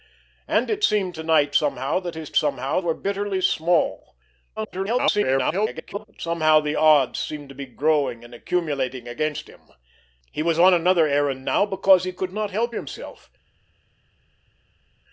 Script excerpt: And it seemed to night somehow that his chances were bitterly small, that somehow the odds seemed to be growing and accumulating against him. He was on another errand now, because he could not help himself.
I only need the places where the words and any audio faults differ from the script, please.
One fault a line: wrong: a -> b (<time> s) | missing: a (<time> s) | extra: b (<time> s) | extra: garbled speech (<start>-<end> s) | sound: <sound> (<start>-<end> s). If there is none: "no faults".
wrong: chances -> somehow (2.3 s)
extra: garbled speech (4.6-6.0 s)